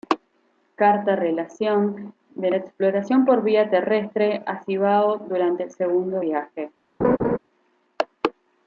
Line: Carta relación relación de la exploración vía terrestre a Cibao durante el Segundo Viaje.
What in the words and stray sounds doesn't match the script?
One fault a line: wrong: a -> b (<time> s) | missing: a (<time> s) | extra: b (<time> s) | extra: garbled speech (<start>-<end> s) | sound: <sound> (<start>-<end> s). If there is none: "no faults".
missing: relación (2.1 s)
extra: por (3.3 s)
sound: laugh (7.0-7.4 s)